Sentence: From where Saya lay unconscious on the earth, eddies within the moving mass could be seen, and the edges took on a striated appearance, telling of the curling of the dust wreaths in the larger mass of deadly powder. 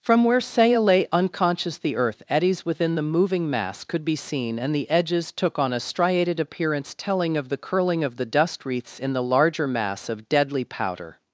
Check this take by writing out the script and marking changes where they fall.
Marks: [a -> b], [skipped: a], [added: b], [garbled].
From where Saya lay unconscious [skipped: on] the earth, eddies within the moving mass could be seen, and the edges took on a striated appearance, telling of the curling of the dust wreaths in the larger mass of deadly powder.